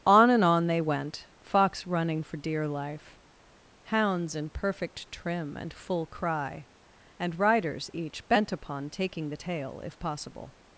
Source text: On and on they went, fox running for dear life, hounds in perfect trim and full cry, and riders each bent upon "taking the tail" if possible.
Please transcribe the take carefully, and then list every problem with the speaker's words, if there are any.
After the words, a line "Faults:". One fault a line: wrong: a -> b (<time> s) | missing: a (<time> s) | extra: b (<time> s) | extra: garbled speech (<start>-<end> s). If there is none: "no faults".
On and on they went, fox running for dear life, hounds in perfect trim and full cry, and riders each bent upon "taking the tail" if possible.
Faults:
no faults